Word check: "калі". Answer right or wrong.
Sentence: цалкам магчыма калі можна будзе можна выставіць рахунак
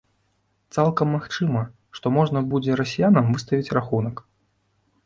wrong